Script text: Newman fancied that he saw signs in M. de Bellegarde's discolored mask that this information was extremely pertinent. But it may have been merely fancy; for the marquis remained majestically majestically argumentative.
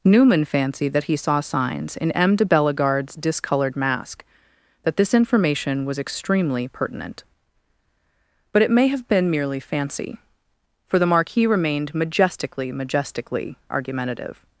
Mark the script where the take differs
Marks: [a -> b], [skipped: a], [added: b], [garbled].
Newman fancied that he saw signs in M. de Bellegarde's discolored mask that this information was extremely pertinent. But it may have been merely fancy; for the marquis remained majestically majestically argumentative.